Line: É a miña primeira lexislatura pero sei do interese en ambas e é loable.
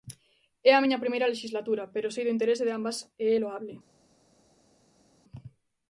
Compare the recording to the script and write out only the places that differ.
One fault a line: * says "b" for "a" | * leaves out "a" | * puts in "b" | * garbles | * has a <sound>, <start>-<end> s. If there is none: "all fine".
* says "de" for "en"